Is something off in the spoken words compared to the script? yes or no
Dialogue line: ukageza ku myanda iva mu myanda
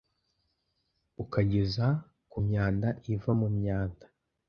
no